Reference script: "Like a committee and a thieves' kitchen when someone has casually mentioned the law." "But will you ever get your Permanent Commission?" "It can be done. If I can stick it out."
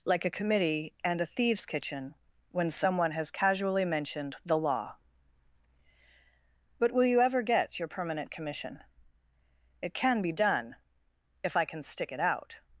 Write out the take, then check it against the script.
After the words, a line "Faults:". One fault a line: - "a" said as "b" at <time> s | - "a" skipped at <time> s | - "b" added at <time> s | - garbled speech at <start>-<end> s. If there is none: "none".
"Like a committee and a thieves' kitchen when someone has casually mentioned the law." "But will you ever get your Permanent Commission?" "It can be done. If I can stick it out."
Faults:
none